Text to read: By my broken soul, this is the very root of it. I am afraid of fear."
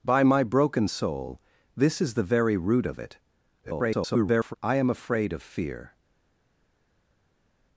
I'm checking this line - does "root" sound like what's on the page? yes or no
yes